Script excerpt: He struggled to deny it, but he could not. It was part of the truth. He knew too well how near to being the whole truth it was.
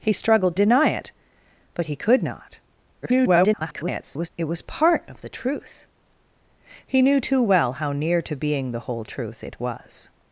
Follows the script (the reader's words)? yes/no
no